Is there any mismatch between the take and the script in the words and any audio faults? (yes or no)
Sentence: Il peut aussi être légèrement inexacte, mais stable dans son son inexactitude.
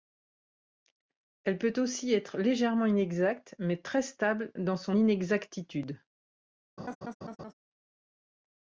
yes